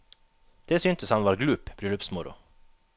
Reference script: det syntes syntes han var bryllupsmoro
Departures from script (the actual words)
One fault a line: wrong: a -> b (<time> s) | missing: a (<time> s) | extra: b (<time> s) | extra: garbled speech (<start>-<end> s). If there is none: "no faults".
missing: syntes (1.1 s)
extra: glup (1.3 s)